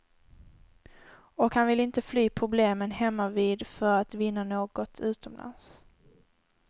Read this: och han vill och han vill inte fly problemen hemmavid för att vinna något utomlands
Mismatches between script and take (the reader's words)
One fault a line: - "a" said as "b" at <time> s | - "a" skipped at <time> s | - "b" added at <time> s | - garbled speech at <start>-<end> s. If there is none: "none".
- "och han vill" skipped at 1.8 s